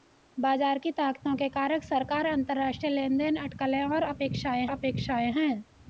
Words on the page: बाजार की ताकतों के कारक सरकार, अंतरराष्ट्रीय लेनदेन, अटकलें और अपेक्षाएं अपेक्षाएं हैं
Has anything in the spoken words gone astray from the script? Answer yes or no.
no